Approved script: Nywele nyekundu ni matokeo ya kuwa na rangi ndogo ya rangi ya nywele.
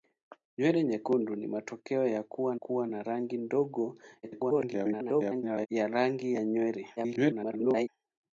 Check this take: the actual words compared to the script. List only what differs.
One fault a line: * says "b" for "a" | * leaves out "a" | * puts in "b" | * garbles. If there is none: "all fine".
* puts in "kuwa"
* garbles
* garbles